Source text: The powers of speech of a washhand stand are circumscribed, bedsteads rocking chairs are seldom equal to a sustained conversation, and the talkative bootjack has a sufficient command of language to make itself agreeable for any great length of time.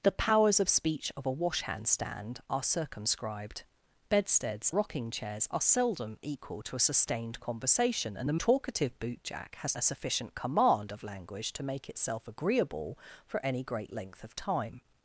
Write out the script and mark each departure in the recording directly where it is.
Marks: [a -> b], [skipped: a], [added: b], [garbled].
The powers of speech of a washhand stand are circumscribed, bedsteads rocking chairs are seldom equal to a sustained conversation, and the talkative bootjack has a sufficient command of language to make itself agreeable for any great length of time.